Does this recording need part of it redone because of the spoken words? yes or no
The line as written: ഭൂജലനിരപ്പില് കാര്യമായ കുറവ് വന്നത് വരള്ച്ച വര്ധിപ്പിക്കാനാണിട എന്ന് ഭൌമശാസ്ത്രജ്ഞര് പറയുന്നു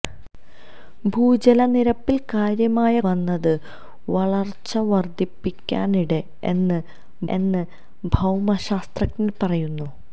yes